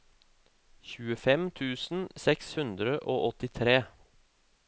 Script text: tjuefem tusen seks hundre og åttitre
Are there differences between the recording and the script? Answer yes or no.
no